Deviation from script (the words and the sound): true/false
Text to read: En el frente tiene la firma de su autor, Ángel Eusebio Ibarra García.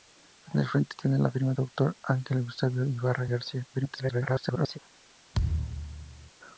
true